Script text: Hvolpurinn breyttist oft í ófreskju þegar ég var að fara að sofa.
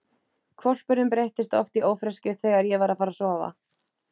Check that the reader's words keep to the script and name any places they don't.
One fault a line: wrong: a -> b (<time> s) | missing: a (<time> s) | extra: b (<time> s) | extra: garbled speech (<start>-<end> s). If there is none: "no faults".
no faults